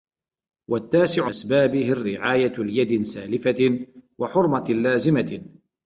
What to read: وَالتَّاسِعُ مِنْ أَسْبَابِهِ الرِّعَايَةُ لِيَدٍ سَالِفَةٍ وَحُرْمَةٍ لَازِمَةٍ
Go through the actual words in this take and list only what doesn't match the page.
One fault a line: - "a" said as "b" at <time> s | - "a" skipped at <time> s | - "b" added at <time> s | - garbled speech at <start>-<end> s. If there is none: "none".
- "مِنْ" skipped at 1.3 s